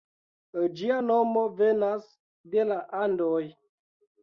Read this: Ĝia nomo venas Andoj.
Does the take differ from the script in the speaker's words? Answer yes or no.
yes